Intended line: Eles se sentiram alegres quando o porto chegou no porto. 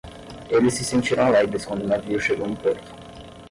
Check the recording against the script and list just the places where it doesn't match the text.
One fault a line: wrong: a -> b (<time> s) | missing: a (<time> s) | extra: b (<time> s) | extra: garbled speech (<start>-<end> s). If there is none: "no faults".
wrong: porto -> navio (1.9 s)